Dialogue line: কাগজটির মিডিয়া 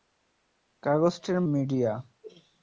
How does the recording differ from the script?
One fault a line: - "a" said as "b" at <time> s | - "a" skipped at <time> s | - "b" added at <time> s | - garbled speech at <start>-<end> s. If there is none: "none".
none